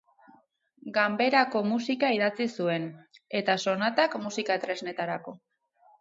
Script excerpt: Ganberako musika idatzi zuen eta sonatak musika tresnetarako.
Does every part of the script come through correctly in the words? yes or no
yes